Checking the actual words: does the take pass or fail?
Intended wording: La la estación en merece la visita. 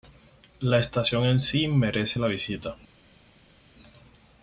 fail